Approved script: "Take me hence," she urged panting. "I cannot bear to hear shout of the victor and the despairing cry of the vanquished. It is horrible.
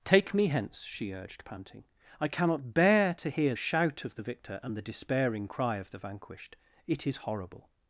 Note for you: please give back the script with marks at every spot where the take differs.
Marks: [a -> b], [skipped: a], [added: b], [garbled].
"Take me hence," she urged panting. "I cannot bear to hear shout of the victor and the despairing cry of the vanquished. It is horrible.